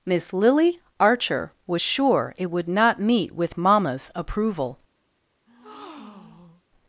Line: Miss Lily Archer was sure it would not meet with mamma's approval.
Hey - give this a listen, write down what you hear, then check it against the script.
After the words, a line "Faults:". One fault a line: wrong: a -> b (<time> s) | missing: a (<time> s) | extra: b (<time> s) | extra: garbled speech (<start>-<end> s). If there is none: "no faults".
Miss Lily Archer was sure it would not meet with mamma's approval.
Faults:
no faults